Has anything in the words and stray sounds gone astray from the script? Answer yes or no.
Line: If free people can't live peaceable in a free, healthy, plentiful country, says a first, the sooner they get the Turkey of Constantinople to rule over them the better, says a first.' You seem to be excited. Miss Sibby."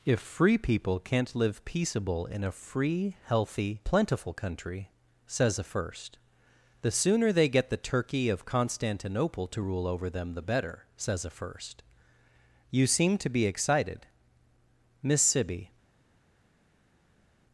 no